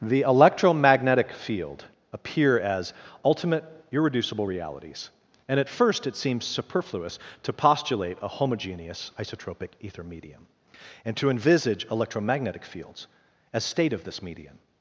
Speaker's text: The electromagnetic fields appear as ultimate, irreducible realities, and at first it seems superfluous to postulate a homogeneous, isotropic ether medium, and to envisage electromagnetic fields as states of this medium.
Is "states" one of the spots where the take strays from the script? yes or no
yes